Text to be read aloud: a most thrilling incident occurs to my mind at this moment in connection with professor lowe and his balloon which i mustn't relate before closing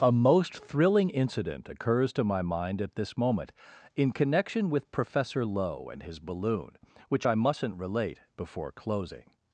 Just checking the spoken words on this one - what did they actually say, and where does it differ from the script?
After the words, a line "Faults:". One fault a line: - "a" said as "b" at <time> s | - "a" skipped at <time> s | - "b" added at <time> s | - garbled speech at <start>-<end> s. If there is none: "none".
a most thrilling incident occurs to my mind at this moment in connection with professor lowe and his balloon which i mustn't relate before closing
Faults:
none